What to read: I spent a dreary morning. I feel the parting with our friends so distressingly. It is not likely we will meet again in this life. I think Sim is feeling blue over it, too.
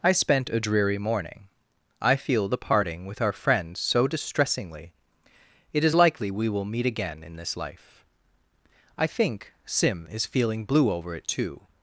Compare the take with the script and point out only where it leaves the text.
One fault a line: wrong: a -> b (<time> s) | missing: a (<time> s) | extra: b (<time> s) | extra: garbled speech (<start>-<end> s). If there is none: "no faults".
missing: not (6.0 s)